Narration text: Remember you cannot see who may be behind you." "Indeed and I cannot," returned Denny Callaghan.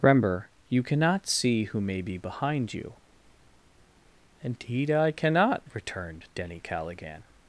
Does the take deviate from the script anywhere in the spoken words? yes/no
yes